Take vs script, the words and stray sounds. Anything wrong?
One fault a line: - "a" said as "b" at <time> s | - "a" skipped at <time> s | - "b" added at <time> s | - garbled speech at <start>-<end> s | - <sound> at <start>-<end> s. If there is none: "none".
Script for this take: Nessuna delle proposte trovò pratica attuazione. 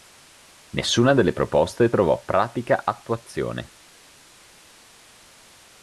none